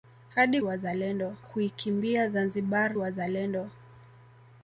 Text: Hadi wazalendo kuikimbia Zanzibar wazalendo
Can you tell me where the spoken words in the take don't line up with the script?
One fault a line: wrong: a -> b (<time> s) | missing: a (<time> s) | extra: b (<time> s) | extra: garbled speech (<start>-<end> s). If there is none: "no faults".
no faults